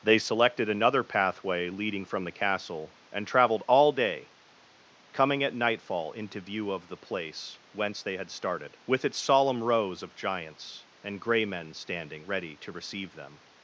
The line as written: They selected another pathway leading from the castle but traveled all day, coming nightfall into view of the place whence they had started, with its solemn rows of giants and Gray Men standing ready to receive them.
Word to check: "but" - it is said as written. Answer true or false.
false